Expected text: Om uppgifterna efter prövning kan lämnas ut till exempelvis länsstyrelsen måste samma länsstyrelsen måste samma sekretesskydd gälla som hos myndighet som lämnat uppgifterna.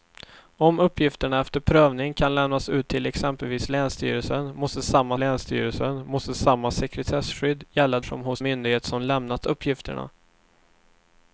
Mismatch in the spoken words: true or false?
false